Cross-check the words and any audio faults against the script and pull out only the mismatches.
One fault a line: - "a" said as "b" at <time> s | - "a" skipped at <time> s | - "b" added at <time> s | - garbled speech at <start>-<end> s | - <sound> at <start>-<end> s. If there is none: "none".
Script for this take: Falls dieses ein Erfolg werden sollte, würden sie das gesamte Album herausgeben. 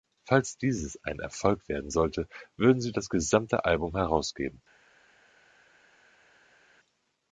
none